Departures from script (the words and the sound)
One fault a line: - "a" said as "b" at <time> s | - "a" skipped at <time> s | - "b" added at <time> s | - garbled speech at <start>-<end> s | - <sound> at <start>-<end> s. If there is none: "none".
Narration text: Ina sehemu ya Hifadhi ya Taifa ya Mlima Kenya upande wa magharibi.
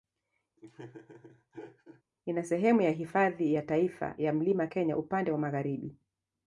- laugh at 0.6-2.0 s